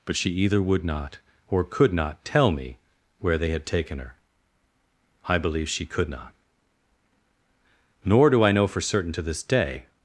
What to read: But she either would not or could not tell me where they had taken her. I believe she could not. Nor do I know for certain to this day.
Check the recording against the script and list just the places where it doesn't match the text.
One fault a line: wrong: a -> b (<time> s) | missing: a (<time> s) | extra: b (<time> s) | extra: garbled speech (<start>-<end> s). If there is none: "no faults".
no faults